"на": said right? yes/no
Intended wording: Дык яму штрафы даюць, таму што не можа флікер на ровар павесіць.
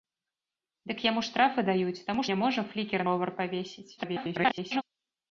no